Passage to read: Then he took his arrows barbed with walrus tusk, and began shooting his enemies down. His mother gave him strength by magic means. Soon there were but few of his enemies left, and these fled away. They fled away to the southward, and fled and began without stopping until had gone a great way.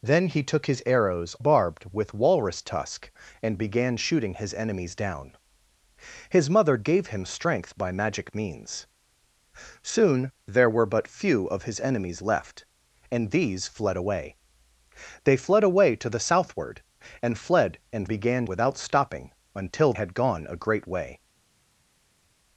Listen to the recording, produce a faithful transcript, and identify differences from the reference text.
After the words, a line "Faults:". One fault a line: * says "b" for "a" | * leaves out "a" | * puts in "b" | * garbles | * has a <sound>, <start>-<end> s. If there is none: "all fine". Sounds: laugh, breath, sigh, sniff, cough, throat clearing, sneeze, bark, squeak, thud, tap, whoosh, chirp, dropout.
Then he took his arrows barbed with walrus tusk, and began shooting his enemies down. His mother gave him strength by magic means. Soon there were but few of his enemies left, and these fled away. They fled away to the southward, and fled and began without stopping until had gone a great way.
Faults:
all fine